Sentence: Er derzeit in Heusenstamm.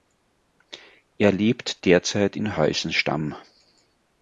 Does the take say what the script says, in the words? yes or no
no